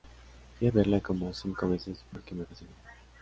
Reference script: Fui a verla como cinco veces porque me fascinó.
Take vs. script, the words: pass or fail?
pass